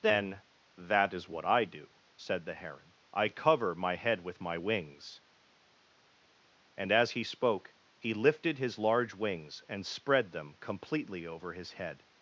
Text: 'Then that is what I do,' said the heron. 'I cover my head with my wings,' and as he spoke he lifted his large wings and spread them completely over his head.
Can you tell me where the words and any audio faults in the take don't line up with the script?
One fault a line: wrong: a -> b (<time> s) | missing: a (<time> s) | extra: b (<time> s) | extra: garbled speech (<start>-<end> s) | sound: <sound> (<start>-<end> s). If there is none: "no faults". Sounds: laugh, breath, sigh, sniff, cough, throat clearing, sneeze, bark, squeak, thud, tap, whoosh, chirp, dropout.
no faults